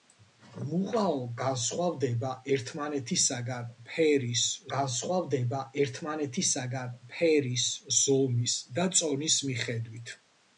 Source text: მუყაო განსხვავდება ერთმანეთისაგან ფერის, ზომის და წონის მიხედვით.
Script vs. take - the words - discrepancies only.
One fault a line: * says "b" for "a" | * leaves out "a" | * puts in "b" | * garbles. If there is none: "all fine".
* puts in "განსხვავდება ერთმანეთისაგან ფერის"